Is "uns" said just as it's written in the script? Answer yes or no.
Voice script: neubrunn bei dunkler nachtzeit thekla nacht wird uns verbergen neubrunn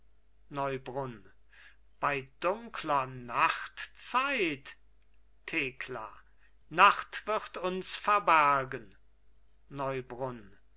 yes